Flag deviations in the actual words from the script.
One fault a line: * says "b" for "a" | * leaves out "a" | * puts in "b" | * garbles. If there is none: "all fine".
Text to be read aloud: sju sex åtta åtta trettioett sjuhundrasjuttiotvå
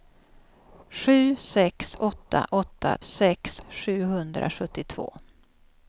* says "sex" for "trettioett"